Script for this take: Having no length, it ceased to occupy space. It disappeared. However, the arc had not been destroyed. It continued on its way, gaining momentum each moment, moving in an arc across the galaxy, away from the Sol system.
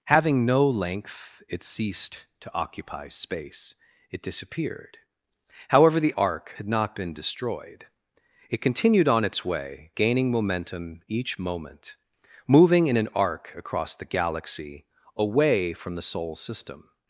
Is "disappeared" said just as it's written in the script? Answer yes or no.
yes